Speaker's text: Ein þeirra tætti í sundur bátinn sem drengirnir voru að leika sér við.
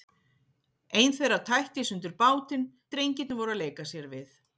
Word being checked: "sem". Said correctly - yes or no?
no